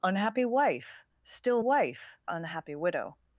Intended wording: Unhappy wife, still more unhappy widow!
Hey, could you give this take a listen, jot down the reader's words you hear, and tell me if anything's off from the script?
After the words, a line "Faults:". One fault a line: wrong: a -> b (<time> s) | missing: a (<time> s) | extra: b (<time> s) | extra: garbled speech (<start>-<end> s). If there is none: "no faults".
Unhappy wife, still wife unhappy widow!
Faults:
wrong: more -> wife (1.6 s)